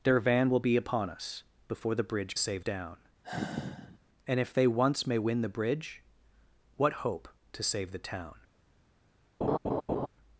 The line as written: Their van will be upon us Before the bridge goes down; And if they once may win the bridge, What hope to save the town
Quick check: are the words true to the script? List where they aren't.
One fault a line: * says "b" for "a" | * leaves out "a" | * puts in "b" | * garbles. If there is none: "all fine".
* says "save" for "goes"